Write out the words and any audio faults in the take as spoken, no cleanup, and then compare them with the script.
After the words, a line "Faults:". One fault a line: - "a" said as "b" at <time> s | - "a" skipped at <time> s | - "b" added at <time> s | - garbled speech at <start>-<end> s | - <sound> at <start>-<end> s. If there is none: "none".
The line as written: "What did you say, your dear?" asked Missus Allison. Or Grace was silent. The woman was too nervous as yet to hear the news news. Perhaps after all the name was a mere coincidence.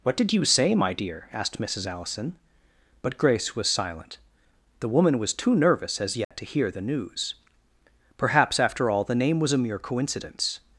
"What did you say, my dear?" asked Missus Allison. But Grace was silent. The woman was too nervous as yet to hear the news. Perhaps after all the name was a mere coincidence.
Faults:
- "your" said as "my" at 0.7 s
- "Or" said as "But" at 3.0 s
- dropout at 6.2-6.3 s
- "news" skipped at 7.3 s